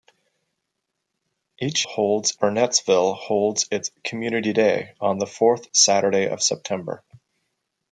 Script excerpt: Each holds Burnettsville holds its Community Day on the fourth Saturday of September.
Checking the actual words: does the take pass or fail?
pass